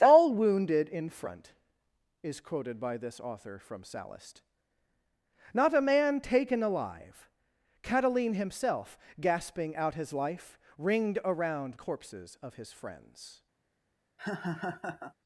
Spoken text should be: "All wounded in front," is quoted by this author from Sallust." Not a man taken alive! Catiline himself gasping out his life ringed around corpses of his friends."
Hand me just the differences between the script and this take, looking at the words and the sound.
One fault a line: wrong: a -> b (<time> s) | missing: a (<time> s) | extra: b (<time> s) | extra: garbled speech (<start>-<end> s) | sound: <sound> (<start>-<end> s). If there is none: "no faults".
sound: laugh (14.2-15.1 s)